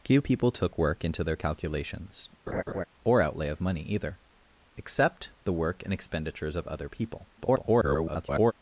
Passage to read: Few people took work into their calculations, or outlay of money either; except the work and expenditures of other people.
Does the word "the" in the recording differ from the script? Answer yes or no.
no